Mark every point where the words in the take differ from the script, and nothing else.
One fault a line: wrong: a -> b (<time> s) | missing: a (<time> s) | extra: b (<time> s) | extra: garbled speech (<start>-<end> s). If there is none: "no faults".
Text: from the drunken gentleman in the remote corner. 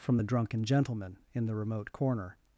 no faults